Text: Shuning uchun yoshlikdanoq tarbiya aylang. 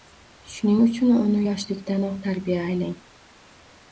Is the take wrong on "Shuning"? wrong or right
right